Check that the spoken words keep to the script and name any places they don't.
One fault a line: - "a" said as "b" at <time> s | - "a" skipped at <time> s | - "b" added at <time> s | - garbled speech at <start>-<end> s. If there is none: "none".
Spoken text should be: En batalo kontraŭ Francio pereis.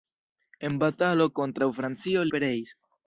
none